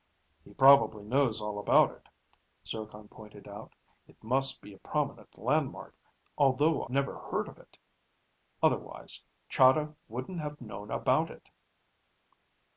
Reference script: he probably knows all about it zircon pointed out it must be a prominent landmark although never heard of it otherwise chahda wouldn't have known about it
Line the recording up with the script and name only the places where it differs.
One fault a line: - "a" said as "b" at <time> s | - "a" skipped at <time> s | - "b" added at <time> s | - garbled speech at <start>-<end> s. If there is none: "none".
none